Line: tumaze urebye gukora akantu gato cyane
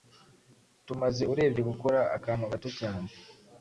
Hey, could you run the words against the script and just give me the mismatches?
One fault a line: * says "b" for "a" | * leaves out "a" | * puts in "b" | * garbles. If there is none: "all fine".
all fine